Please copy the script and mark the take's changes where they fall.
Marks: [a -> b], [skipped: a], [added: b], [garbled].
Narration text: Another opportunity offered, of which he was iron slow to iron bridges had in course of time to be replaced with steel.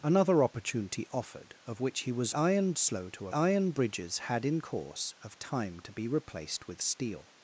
Another opportunity offered, of which he was iron slow to iron bridges had in course of time to be replaced with steel.